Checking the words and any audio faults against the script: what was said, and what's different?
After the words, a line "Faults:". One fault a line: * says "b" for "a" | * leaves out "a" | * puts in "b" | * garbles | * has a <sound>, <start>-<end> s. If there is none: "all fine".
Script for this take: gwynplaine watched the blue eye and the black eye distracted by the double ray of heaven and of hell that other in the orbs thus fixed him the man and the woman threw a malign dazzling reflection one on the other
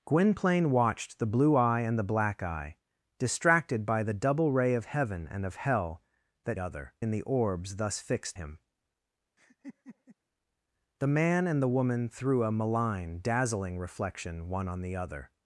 gwynplaine watched the blue eye and the black eye distracted by the double ray of heaven and of hell that other in the orbs thus fixed him the man and the woman threw a malign dazzling reflection one on the other
Faults:
* has a laugh, 9.4-10.2 s